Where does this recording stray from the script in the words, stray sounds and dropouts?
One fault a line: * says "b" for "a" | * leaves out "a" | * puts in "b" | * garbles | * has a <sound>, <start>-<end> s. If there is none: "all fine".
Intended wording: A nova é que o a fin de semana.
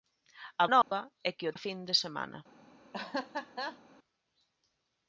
* has a dropout, 0.8-0.9 s
* has a laugh, 2.9-3.8 s